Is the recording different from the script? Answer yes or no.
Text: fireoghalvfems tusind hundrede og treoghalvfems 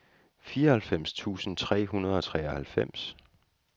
yes